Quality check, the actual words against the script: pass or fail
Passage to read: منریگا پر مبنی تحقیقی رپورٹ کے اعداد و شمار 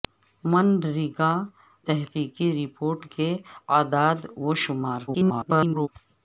fail